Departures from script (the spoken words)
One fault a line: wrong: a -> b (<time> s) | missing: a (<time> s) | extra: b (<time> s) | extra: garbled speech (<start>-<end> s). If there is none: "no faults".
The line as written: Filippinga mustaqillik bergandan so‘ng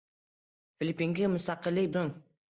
missing: bergandan (1.9 s)